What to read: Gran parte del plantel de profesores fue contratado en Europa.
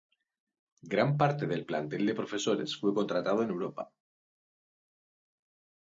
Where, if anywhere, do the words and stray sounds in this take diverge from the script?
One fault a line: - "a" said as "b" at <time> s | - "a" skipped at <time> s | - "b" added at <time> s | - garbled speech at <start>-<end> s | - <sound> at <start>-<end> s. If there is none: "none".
none